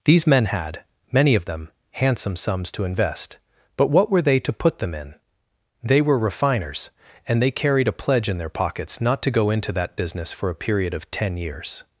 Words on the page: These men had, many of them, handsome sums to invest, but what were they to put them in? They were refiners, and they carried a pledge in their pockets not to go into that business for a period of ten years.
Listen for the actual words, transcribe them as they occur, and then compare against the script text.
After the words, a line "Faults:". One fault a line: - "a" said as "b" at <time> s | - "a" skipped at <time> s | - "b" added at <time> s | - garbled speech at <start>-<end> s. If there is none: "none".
These men had, many of them, handsome sums to invest, but what were they to put them in? They were refiners, and they carried a pledge in their pockets not to go into that business for a period of ten years.
Faults:
none